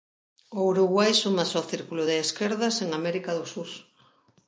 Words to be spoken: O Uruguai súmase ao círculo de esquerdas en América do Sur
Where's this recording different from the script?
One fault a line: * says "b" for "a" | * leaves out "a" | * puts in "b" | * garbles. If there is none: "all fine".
all fine